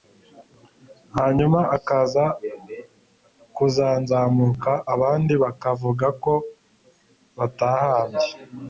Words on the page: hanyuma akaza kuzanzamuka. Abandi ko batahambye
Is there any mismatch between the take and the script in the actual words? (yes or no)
yes